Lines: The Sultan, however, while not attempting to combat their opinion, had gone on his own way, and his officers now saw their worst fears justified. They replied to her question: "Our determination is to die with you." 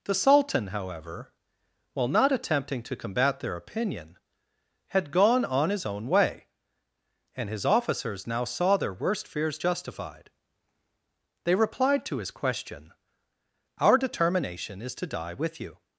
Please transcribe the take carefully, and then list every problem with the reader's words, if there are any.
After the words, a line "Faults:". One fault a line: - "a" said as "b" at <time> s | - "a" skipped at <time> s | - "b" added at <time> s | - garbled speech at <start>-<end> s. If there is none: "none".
The Sultan, however, while not attempting to combat their opinion, had gone on his own way, and his officers now saw their worst fears justified. They replied to his question: "Our determination is to die with you."
Faults:
- "her" said as "his" at 12.2 s